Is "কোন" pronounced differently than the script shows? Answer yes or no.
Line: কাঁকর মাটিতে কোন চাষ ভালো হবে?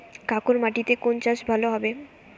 no